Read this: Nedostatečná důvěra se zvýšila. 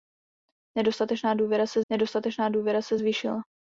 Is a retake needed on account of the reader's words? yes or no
yes